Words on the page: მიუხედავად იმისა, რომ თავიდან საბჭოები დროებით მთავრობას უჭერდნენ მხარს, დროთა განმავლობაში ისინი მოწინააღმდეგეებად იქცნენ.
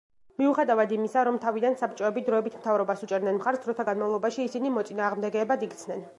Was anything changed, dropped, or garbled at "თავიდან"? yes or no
no